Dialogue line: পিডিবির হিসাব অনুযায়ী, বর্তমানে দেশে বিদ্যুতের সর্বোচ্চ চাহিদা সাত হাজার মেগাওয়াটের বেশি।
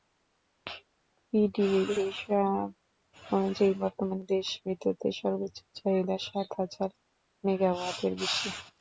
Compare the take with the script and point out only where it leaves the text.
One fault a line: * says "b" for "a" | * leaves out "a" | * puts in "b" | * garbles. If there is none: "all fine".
all fine